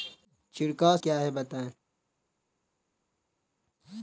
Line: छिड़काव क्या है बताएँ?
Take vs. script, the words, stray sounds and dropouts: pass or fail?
pass